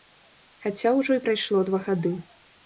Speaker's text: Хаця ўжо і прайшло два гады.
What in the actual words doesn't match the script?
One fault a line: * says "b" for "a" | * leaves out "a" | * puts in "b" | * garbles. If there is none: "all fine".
all fine